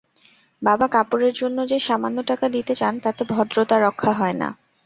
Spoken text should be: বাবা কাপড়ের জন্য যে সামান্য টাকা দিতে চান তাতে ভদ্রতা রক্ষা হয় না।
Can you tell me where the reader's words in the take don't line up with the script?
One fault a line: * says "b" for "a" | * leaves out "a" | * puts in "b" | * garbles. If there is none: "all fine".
all fine